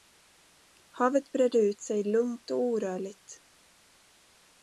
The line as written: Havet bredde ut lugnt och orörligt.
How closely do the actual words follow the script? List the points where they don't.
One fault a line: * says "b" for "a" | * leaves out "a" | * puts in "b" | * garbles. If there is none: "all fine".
* puts in "sig"